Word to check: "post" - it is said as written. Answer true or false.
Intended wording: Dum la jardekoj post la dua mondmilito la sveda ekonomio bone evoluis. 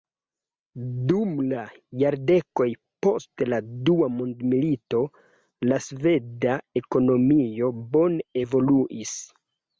true